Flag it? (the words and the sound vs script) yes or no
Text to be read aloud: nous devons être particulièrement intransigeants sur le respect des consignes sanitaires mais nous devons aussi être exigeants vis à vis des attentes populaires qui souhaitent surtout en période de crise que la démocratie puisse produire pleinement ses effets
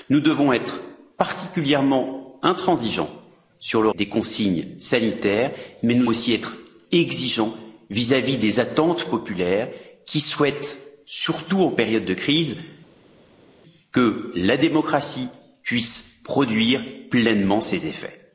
yes